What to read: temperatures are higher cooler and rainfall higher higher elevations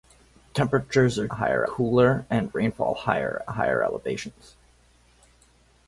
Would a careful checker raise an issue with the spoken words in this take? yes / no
no